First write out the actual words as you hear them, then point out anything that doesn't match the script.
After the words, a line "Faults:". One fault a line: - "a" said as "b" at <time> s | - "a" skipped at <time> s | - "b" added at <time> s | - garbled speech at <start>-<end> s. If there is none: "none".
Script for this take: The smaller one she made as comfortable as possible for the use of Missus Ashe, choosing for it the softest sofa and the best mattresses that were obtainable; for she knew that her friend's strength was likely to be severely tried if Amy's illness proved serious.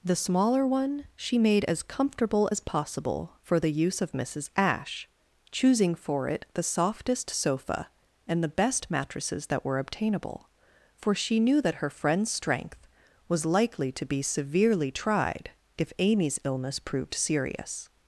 The smaller one she made as comfortable as possible for the use of Missus Ashe, choosing for it the softest sofa and the best mattresses that were obtainable; for she knew that her friend's strength was likely to be severely tried if Amy's illness proved serious.
Faults:
none